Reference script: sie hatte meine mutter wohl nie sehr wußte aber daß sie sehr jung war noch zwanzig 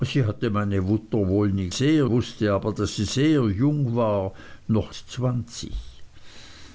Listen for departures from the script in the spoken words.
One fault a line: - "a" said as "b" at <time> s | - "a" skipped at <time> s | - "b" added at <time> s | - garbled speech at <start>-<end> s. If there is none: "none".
none